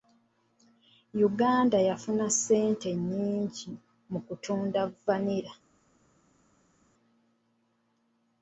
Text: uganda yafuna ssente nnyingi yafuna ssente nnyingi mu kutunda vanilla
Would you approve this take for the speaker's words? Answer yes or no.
no